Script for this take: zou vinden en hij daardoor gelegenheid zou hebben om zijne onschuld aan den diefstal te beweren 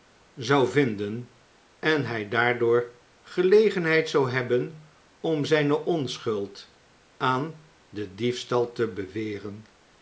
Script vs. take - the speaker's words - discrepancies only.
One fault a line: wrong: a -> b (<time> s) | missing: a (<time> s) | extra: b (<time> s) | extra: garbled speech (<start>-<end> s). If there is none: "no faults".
no faults